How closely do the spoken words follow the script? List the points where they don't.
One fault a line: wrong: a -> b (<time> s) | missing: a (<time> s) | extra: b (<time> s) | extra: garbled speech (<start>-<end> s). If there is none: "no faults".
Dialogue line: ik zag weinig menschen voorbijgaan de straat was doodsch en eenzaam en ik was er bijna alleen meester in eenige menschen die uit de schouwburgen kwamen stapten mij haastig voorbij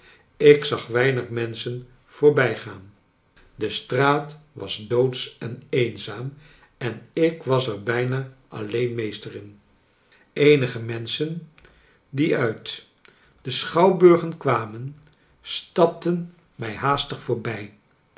no faults